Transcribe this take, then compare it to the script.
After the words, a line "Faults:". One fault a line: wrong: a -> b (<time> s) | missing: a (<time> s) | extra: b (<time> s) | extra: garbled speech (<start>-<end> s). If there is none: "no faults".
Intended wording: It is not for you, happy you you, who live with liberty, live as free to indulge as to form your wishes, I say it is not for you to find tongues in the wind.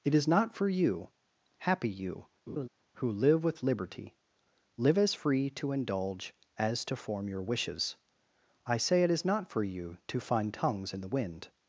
It is not for you, happy you, who live with liberty, live as free to indulge as to form your wishes, I say it is not for you to find tongues in the wind.
Faults:
missing: you (2.2 s)